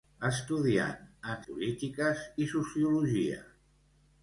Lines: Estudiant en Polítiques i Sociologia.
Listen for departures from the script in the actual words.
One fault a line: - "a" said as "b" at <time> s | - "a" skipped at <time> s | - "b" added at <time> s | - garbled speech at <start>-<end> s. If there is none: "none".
none